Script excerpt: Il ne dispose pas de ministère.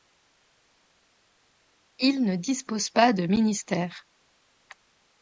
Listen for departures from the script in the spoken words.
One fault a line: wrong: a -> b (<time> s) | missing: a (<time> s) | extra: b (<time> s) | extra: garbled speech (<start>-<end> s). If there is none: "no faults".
no faults